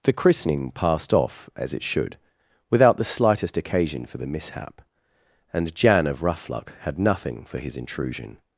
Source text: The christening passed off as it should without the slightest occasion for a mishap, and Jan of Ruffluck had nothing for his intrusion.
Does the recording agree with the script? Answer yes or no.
no